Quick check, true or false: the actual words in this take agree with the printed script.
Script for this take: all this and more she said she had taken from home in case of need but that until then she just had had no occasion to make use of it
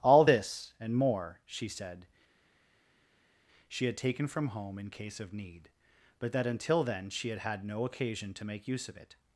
false